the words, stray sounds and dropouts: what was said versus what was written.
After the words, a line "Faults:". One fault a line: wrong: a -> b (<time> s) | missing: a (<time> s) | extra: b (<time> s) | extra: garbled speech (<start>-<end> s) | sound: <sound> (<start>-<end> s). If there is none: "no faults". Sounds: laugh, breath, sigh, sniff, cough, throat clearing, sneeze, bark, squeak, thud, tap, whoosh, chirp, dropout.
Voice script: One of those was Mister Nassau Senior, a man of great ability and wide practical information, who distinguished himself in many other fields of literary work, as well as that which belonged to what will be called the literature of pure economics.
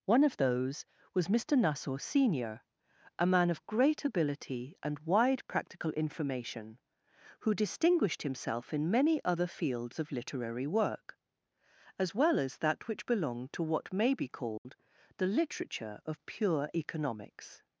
One of those was Mister Nassau Senior, a man of great ability and wide practical information, who distinguished himself in many other fields of literary work, as well as that which belonged to what may be called the literature of pure economics.
Faults:
wrong: will -> may (13.9 s)
sound: dropout (14.6-14.6 s)